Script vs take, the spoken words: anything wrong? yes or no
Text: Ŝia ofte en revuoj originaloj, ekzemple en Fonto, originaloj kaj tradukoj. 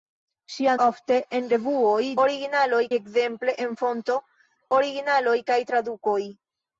no